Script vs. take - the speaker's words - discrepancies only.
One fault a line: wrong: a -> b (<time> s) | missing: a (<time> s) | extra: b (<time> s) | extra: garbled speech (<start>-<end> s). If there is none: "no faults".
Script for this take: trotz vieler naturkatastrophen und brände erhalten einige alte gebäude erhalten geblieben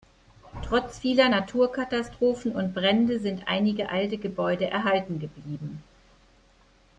wrong: erhalten -> sind (3.2 s)